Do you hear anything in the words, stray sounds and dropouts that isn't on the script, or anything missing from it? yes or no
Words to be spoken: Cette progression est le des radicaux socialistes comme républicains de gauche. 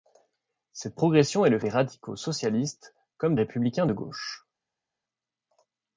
no